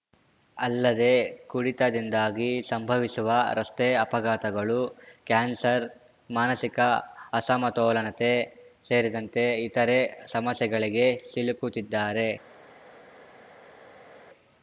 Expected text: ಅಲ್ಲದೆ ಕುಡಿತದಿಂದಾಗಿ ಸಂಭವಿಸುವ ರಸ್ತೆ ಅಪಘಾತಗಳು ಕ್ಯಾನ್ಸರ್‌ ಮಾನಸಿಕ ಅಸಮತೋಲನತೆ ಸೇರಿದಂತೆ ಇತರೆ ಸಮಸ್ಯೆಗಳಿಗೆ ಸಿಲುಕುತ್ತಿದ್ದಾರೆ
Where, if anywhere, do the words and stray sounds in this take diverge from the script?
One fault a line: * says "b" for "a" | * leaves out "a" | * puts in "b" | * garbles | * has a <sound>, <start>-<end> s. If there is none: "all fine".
all fine